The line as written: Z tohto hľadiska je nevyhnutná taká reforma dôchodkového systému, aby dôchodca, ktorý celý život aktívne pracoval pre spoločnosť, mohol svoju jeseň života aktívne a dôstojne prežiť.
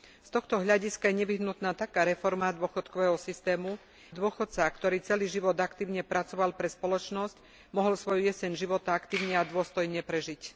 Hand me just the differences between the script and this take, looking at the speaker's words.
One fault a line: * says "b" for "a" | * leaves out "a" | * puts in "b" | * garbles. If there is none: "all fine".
* leaves out "aby"